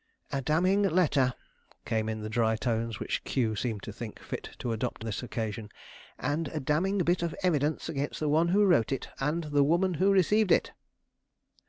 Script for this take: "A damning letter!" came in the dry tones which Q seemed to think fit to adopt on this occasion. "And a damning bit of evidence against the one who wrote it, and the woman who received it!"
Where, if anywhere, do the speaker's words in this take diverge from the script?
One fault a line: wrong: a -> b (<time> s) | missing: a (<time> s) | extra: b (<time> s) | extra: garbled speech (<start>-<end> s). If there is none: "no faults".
missing: on (5.0 s)